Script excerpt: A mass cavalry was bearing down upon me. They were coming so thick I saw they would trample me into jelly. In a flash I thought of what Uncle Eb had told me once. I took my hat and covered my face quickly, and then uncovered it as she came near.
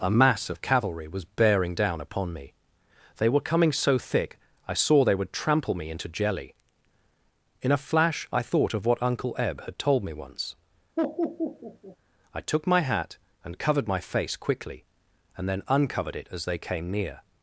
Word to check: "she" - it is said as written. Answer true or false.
false